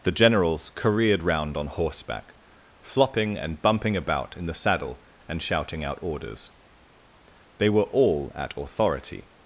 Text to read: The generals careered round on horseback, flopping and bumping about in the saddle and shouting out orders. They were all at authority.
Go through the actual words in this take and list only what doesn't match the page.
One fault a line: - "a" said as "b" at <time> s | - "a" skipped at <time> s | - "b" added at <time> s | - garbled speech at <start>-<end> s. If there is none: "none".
none